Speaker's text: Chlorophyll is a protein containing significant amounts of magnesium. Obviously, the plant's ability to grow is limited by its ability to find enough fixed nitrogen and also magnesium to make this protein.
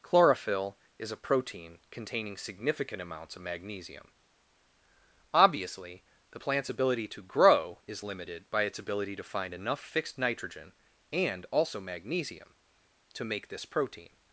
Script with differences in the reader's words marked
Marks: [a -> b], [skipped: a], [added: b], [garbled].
Chlorophyll is a protein containing significant amounts of magnesium. Obviously, the plant's ability to grow is limited by its ability to find enough fixed nitrogen and also magnesium to make this protein.